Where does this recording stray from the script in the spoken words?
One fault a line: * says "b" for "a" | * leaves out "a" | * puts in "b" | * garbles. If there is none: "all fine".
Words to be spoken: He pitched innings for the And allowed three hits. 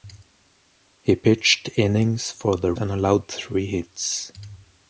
all fine